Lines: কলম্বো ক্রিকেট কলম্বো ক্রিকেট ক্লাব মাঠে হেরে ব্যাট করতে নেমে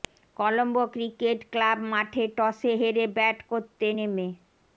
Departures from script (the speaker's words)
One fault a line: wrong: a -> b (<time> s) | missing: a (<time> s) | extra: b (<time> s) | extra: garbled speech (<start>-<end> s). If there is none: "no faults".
missing: কলম্বো ক্রিকেট (1.4 s)
extra: টসে (2.4 s)